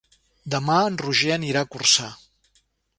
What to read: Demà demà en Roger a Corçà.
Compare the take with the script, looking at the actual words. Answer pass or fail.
fail